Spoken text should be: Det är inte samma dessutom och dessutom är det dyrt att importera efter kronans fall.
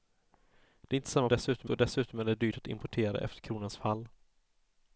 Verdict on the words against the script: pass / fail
pass